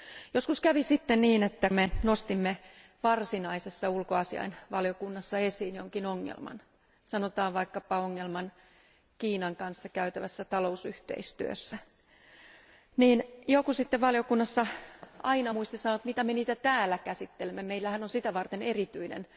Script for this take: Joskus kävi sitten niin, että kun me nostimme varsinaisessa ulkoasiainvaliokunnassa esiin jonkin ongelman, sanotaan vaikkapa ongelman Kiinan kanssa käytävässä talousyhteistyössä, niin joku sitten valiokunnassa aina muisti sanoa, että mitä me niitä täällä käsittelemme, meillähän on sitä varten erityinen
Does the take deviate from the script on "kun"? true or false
true